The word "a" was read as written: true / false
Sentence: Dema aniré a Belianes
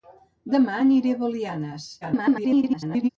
true